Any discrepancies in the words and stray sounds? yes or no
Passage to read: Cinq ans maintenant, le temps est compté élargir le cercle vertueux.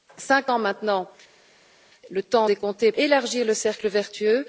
no